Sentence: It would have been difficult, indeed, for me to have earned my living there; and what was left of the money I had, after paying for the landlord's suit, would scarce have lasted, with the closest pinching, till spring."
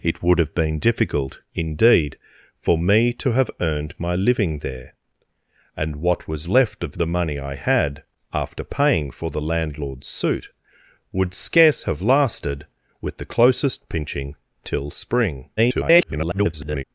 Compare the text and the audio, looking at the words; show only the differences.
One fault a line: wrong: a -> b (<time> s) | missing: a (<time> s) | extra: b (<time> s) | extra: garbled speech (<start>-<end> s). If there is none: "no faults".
extra: garbled speech (15.6-16.8 s)